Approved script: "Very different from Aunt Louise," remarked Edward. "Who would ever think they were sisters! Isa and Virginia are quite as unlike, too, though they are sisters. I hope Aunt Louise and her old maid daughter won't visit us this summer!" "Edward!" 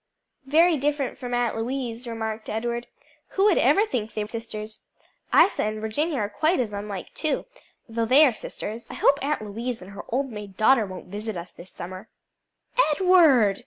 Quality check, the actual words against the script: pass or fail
fail